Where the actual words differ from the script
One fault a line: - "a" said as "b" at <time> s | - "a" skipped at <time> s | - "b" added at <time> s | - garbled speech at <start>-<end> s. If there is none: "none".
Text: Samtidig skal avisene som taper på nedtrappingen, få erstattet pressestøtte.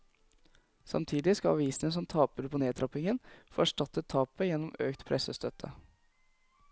- "tapet gjennom økt" added at 4.1 s